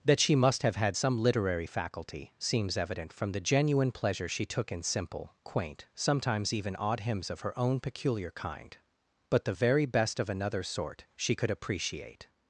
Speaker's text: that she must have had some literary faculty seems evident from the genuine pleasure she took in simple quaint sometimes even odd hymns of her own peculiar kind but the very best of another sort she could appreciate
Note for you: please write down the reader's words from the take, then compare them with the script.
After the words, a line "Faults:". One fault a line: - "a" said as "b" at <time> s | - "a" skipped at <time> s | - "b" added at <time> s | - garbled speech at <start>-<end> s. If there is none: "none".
that she must have had some literary faculty seems evident from the genuine pleasure she took in simple quaint sometimes even odd hymns of her own peculiar kind but the very best of another sort she could appreciate
Faults:
none